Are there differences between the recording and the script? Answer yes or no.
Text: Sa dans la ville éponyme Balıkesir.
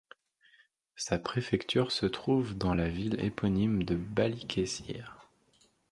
yes